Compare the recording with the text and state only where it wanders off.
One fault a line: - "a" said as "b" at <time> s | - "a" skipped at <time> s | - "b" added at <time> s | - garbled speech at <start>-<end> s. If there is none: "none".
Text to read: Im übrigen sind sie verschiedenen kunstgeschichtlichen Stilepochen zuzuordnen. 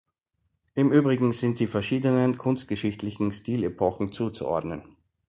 none